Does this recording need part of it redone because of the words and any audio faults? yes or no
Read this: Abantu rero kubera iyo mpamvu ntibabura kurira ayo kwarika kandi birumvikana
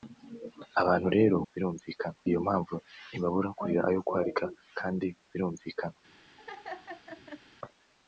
yes